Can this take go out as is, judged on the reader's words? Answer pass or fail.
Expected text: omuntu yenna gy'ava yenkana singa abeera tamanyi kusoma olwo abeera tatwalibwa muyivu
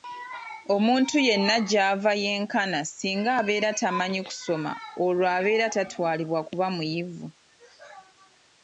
fail